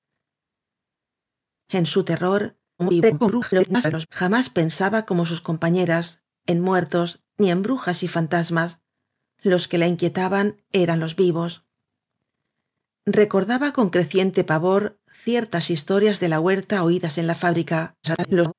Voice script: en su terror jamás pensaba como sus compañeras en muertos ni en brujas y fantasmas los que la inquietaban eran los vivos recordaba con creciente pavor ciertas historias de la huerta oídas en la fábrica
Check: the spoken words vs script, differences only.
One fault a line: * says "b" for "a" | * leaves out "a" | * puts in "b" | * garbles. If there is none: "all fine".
* garbles
* garbles